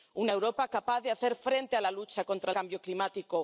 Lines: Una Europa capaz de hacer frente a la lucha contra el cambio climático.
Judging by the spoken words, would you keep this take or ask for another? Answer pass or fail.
fail